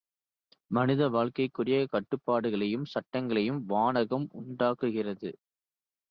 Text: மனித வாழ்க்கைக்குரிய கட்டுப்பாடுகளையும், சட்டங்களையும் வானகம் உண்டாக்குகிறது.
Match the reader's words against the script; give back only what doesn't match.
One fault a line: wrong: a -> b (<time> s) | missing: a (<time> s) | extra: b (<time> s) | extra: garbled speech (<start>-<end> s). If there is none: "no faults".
no faults